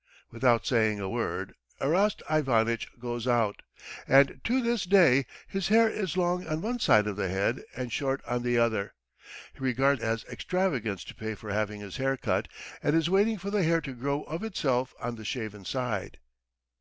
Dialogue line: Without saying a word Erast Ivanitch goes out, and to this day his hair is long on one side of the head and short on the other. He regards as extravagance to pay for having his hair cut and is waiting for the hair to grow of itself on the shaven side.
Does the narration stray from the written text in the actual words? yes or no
no